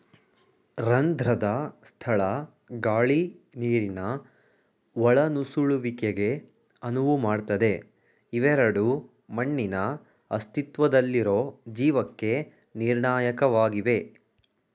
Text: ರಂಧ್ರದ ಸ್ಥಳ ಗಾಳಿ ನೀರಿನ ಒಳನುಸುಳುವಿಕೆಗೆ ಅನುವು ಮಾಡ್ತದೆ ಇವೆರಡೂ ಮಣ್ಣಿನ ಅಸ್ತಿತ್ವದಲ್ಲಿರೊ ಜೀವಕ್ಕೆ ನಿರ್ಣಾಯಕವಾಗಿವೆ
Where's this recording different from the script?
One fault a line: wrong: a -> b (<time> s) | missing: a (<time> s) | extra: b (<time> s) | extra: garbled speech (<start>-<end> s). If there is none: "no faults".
no faults